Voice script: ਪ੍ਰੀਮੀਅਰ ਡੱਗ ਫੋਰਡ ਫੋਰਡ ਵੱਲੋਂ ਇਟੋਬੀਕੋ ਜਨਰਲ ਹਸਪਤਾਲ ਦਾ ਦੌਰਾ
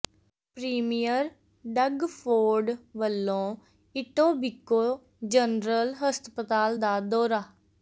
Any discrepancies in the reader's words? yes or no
yes